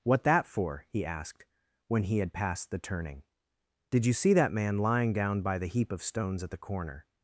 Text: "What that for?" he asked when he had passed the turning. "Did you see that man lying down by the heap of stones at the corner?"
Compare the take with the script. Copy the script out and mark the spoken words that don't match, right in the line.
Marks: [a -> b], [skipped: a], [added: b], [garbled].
"What that for?" he asked when he had passed the turning. "Did you see that man lying down by the heap of stones at the corner?"